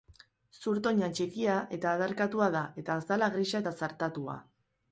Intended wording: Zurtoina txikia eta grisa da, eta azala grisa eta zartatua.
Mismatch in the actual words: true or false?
true